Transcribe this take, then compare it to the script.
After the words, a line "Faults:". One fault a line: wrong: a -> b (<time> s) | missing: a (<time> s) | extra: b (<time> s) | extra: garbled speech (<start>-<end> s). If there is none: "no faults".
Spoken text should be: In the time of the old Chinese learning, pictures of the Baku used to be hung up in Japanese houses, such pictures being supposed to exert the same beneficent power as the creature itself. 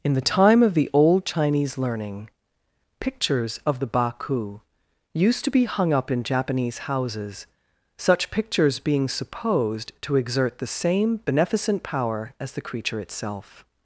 In the time of the old Chinese learning, pictures of the Baku used to be hung up in Japanese houses, such pictures being supposed to exert the same beneficent power as the creature itself.
Faults:
no faults